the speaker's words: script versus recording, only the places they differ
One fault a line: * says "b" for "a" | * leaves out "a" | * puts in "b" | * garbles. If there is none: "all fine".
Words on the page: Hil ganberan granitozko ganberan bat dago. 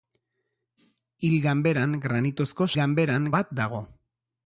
all fine